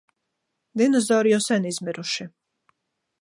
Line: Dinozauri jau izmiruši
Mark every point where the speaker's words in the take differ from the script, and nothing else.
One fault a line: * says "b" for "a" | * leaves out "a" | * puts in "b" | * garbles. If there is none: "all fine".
* puts in "sen"